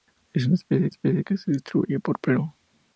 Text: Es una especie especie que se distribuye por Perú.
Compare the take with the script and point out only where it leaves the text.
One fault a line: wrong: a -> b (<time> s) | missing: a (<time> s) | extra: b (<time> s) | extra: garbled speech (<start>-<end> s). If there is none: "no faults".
no faults